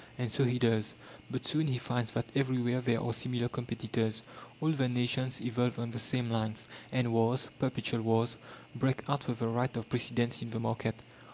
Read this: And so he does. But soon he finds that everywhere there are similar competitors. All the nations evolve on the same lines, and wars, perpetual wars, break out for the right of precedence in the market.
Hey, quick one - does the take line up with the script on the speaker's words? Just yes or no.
yes